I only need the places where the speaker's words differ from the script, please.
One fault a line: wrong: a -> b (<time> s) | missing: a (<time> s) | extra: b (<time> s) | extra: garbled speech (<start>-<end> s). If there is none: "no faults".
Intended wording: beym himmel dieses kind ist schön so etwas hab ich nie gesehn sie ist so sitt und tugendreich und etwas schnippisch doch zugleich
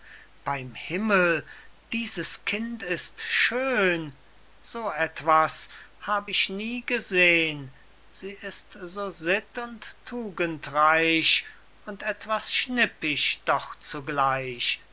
no faults